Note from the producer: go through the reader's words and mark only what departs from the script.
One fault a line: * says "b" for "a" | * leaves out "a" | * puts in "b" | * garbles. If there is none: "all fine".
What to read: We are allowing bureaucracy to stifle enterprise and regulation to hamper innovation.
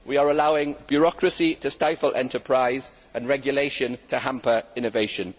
all fine